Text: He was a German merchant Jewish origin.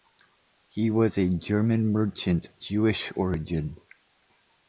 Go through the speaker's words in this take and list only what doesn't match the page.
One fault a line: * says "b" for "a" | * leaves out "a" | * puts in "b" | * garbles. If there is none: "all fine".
all fine